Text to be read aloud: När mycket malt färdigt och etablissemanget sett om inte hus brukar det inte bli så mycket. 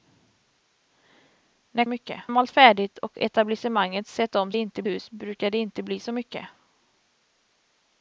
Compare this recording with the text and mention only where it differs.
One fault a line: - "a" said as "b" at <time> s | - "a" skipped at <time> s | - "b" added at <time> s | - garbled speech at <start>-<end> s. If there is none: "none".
none